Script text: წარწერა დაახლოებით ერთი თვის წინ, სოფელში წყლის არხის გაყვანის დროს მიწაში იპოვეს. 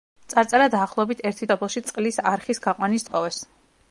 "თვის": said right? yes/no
no